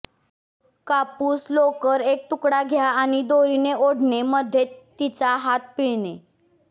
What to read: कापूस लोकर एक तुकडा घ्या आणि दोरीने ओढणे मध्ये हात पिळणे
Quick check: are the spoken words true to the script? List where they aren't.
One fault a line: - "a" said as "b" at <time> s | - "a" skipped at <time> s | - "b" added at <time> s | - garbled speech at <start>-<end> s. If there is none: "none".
- "तिचा" added at 5.0 s